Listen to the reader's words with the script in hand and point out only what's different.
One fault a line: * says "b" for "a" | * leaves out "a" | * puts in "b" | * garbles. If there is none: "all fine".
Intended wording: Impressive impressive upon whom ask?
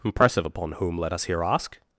* leaves out "impressive"
* puts in "let us here"